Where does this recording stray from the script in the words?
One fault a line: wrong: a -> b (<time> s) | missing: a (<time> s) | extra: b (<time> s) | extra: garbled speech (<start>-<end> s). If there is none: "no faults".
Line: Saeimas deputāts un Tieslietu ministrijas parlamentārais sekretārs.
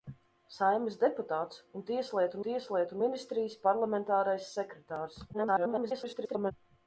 extra: Tieslietu (2.5 s)
extra: garbled speech (5.3-6.5 s)